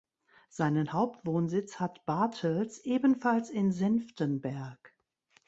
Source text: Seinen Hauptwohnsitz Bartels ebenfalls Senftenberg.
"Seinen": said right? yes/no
yes